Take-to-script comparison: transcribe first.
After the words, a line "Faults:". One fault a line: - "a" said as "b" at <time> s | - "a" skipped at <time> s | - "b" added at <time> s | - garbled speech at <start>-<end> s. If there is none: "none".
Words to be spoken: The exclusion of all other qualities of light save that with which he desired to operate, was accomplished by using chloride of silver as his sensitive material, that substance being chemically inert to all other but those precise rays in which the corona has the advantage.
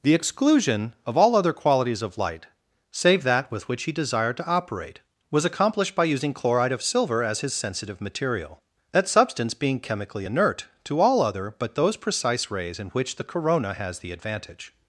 The exclusion of all other qualities of light save that with which he desired to operate, was accomplished by using chloride of silver as his sensitive material, that substance being chemically inert to all other but those precise rays in which the corona has the advantage.
Faults:
none